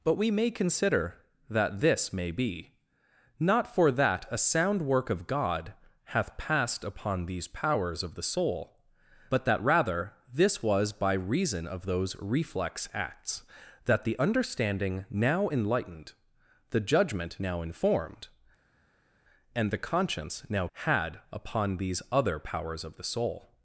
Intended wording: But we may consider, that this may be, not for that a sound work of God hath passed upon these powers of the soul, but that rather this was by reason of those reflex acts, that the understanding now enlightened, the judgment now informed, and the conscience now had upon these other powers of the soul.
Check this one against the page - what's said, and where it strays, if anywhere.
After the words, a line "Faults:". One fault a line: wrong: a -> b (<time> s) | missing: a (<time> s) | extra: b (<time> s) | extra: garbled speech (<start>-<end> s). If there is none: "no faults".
But we may consider, that this may be, not for that a sound work of God hath passed upon these powers of the soul, but that rather this was by reason of those reflex acts, that the understanding now enlightened, the judgment now informed, and the conscience now had upon these other powers of the soul.
Faults:
no faults